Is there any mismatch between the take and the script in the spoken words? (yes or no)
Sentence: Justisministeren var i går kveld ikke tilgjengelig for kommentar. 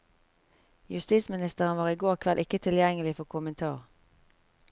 no